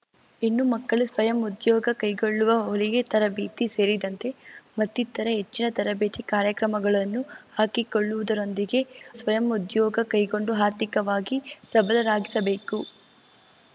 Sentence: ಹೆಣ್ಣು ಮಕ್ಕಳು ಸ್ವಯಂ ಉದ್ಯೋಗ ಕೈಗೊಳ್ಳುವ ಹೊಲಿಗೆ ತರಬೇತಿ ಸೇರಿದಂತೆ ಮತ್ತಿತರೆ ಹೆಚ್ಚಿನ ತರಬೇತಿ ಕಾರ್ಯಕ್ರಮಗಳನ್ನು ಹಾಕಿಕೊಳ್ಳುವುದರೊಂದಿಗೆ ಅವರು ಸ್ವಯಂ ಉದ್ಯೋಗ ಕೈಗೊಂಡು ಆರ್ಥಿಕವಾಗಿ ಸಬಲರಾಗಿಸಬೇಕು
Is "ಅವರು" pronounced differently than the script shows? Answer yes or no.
yes